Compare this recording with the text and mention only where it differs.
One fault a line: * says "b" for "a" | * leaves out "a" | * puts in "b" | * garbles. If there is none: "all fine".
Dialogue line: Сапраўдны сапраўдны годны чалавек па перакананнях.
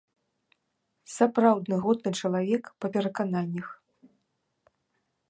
* leaves out "сапраўдны"